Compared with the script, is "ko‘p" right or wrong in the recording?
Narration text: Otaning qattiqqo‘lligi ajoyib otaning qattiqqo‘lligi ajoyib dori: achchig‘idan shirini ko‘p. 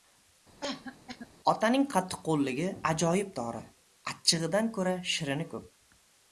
right